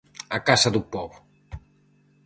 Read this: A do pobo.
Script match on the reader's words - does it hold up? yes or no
no